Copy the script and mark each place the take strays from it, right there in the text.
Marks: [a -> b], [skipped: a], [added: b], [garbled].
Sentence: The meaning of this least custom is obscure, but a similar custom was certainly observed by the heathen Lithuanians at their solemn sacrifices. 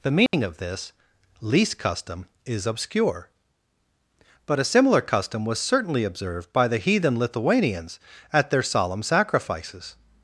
The meaning of this least custom is obscure, but a similar custom was certainly observed by the heathen Lithuanians at their solemn sacrifices.